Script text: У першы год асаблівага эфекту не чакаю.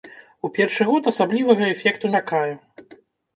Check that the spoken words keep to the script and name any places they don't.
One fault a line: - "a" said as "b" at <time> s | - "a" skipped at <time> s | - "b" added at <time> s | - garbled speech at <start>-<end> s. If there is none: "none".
- "не" skipped at 2.1 s